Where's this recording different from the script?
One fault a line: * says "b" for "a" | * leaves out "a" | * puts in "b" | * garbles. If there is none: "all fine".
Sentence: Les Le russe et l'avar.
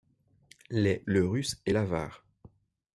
all fine